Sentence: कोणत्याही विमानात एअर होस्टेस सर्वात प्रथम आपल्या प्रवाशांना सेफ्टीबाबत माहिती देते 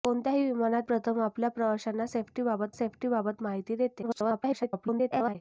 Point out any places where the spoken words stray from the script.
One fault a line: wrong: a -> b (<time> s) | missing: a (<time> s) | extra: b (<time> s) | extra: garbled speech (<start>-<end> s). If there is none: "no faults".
missing: एअर होस्टेस सर्वात (0.9 s)
extra: सेफ्टीबाबत (2.7 s)
extra: garbled speech (4.0-5.4 s)